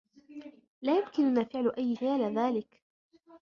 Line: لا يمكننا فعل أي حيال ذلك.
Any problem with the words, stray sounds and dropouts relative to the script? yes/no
no